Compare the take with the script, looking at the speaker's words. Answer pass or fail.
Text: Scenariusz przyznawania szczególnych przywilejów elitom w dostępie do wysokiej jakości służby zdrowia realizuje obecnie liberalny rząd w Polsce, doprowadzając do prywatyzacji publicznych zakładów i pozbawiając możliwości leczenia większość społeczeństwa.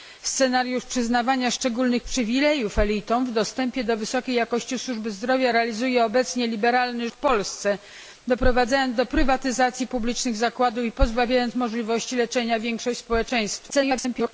fail